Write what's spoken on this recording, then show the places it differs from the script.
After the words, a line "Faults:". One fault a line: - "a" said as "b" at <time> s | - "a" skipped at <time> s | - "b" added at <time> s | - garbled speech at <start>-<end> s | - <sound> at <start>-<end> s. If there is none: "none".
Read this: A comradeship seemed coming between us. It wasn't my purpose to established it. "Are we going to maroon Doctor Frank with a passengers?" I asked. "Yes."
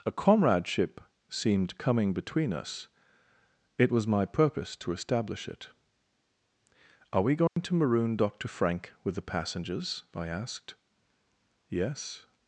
A comradeship seemed coming between us. It was my purpose to establish it. "Are we going to maroon Doctor Frank with the passengers?" I asked. "Yes."
Faults:
- "wasn't" said as "was" at 3.9 s
- "established" said as "establish" at 4.9 s
- dropout at 7.5-7.6 s
- "a" said as "the" at 9.2 s